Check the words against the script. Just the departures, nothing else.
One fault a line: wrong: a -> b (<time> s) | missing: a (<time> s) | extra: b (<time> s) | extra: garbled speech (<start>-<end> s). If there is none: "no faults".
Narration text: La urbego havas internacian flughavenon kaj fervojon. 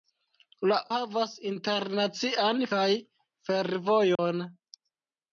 missing: urbego (0.8 s)
missing: flughavenon (2.7 s)